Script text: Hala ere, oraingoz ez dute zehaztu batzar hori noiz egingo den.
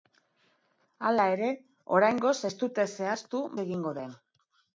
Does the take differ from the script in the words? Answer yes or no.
yes